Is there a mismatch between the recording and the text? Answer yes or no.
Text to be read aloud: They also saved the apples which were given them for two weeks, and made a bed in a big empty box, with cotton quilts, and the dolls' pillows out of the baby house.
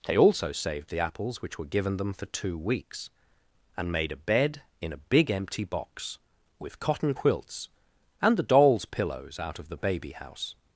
no